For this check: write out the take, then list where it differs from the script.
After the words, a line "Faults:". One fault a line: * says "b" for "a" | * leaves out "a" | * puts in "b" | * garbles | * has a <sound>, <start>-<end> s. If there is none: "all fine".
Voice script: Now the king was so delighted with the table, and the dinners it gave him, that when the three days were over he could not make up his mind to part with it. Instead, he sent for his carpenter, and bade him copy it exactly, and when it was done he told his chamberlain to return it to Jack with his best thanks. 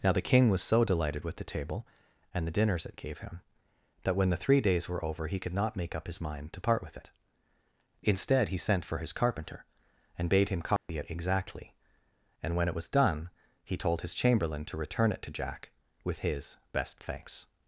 Now the king was so delighted with the table, and the dinners it gave him, that when the three days were over he could not make up his mind to part with it. Instead, he sent for his carpenter, and bade him copy it exactly, and when it was done he told his chamberlain to return it to Jack with his best thanks.
Faults:
* has a dropout, 10.8-10.9 s